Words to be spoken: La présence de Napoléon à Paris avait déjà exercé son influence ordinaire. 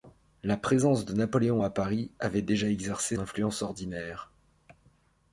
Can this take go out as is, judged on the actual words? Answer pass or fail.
fail